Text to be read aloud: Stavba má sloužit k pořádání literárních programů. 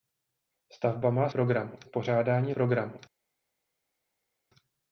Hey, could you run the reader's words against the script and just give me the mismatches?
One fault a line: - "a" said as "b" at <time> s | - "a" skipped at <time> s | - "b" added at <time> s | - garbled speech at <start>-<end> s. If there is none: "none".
- "sloužit" said as "programů" at 1.3 s
- "literárních" skipped at 2.5 s